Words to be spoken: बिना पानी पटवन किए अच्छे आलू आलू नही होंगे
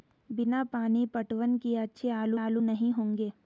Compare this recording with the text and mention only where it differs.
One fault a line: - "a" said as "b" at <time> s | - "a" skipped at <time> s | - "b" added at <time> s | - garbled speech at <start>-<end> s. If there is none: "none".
none